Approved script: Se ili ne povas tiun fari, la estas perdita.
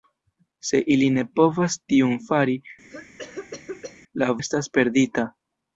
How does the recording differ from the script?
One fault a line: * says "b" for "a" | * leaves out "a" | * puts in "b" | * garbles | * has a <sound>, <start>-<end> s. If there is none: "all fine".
* has a cough, 2.9-4.0 s